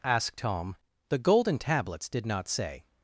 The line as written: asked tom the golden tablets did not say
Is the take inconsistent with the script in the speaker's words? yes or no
no